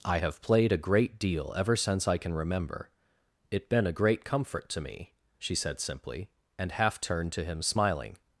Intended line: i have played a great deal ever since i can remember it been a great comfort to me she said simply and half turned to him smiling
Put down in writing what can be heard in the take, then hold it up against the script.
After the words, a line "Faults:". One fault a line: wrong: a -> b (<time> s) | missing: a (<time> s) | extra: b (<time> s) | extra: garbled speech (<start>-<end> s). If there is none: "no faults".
i have played a great deal ever since i can remember it been a great comfort to me she said simply and half turned to him smiling
Faults:
no faults